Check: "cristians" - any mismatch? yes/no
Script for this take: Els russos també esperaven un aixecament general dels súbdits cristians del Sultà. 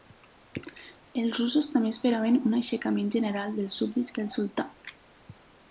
yes